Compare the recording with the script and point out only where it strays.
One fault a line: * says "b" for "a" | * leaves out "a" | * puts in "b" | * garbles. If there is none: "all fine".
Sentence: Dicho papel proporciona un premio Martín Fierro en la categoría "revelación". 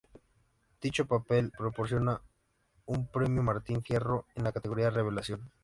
all fine